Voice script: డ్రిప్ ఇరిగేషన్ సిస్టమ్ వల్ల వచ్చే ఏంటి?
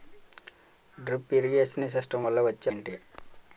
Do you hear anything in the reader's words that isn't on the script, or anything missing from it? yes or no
no